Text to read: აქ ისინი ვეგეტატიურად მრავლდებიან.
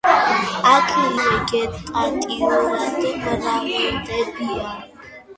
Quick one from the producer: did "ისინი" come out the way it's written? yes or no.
no